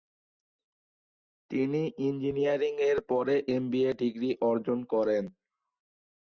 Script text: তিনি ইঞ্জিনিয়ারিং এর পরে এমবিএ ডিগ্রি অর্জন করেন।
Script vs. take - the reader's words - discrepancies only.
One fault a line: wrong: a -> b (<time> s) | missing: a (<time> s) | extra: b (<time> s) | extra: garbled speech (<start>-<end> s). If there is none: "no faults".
no faults